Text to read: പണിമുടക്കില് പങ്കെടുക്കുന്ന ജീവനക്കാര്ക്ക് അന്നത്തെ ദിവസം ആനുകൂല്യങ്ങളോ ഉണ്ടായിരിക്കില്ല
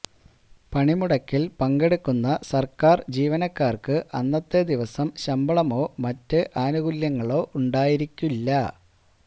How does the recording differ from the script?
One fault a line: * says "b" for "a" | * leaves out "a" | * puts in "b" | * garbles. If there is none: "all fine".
* puts in "സര്ക്കാര്"
* puts in "ശമ്പളമോ മറ്റ്"